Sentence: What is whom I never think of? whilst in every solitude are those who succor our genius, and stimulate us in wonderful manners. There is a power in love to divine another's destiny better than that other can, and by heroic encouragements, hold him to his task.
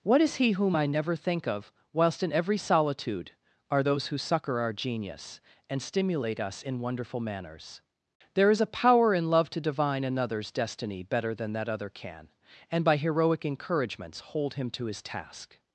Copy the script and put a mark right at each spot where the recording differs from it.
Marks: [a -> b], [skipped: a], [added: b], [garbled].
What is [added: he] whom I never think of? whilst in every solitude are those who succor our genius, and stimulate us in wonderful manners. There is a power in love to divine another's destiny better than that other can, and by heroic encouragements, hold him to his task.